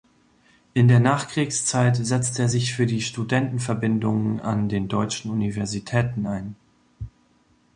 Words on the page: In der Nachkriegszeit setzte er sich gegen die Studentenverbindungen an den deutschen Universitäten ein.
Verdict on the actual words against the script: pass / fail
fail